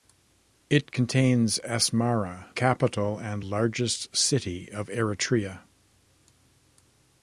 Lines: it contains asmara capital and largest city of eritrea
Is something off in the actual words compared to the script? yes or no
no